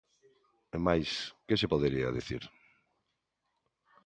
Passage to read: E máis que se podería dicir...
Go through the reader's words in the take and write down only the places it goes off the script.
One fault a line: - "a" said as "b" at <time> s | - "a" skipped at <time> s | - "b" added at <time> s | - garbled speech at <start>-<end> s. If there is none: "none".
none